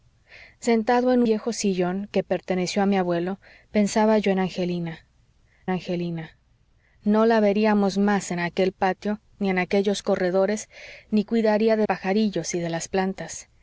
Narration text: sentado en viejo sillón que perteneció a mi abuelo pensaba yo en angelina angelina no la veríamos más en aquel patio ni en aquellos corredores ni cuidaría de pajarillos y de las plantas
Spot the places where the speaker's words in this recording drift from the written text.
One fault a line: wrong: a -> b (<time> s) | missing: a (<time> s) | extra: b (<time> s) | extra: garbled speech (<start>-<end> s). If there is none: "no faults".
no faults